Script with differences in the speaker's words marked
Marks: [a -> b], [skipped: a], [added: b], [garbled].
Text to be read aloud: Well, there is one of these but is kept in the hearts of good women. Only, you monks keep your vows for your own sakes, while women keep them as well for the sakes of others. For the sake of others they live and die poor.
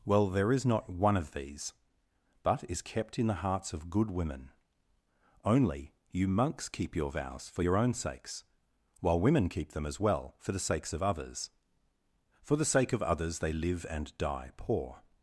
Well, there is [added: not] one of these but is kept in the hearts of good women. Only, you monks keep your vows for your own sakes, while women keep them as well for the sakes of others. For the sake of others they live and die poor.